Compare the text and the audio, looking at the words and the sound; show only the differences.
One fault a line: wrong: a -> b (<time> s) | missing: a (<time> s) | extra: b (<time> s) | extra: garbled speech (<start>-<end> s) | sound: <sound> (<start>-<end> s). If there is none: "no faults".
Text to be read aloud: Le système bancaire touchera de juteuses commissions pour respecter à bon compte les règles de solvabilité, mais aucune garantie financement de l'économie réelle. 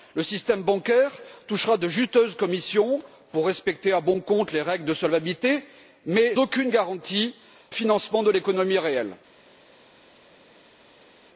no faults